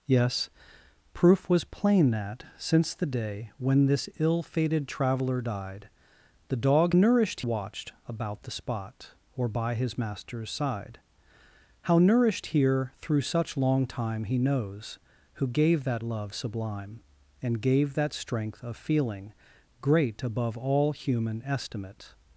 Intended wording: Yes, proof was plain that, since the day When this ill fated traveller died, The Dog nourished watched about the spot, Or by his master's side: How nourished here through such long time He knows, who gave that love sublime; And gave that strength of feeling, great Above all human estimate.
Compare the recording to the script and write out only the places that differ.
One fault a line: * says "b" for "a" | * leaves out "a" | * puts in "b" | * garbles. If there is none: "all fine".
all fine